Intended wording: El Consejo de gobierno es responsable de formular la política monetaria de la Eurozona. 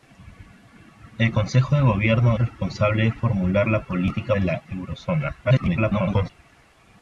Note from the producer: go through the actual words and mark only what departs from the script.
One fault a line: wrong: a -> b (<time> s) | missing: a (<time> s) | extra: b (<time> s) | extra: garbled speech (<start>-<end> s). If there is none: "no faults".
missing: es (2.4 s)
missing: monetaria (4.3 s)
extra: garbled speech (5.4-6.3 s)